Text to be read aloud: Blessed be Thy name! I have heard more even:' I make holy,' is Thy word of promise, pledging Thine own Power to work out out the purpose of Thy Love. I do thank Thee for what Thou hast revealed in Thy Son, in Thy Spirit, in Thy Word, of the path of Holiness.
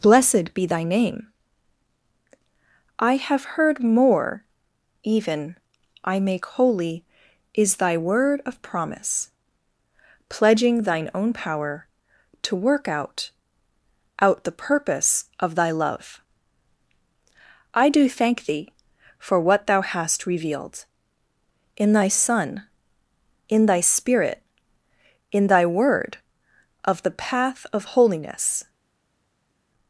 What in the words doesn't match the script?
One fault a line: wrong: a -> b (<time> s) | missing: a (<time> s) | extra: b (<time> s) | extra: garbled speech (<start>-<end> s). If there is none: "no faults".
no faults